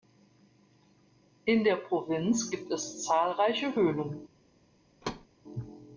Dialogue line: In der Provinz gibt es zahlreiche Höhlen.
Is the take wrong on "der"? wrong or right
right